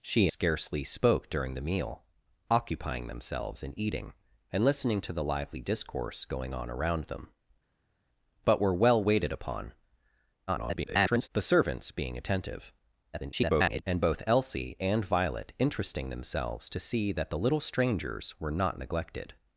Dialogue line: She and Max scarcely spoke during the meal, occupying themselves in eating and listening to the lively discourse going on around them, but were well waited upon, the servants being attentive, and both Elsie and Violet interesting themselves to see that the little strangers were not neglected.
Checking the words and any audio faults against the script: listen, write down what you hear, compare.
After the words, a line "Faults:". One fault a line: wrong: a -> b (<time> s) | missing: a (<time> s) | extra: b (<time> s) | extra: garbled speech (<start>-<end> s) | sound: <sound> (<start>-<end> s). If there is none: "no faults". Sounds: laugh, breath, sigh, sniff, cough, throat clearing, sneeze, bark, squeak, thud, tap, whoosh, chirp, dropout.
She scarcely spoke during the meal, occupying themselves in eating and listening to the lively discourse going on around them, but were well waited upon, [garbled] the servants being attentive, [garbled] and both Elsie and Violet interesting themselves to see that the little strangers were not neglected.
Faults:
missing: and Max (0.3 s)
extra: garbled speech (10.5-11.3 s)
extra: garbled speech (13.1-13.8 s)